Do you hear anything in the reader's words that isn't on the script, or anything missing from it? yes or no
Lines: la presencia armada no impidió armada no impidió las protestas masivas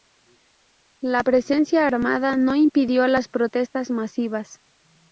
yes